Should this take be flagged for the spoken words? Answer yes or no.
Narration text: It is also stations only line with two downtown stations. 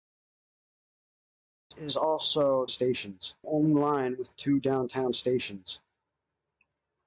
no